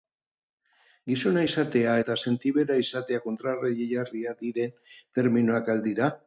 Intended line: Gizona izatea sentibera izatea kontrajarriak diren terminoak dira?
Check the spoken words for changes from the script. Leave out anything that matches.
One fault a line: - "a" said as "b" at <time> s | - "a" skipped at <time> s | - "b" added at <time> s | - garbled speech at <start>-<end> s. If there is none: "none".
- "eta" added at 2.0 s
- "al" added at 5.8 s